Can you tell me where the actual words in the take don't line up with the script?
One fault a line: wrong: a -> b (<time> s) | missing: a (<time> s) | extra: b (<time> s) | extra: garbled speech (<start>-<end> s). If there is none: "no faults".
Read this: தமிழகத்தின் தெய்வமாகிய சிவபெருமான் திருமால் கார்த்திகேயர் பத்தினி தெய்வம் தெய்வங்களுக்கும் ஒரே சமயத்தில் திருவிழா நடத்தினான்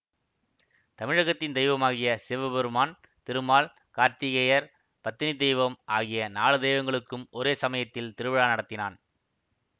extra: ஆகிய நாலு (5.9 s)